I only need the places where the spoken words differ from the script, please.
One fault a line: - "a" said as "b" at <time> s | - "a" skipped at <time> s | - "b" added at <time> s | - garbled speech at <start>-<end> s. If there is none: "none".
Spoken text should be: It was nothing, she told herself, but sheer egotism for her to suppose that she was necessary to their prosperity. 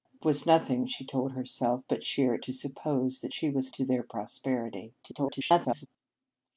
- "egotism for her" skipped at 2.3 s
- "necessary" skipped at 3.7 s
- garbled speech at 5.0-5.9 s